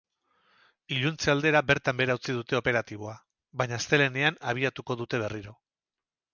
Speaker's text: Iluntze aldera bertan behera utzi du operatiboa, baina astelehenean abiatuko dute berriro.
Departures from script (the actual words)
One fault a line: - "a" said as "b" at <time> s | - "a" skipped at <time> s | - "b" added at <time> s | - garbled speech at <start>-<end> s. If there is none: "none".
- "du" said as "dute" at 2.4 s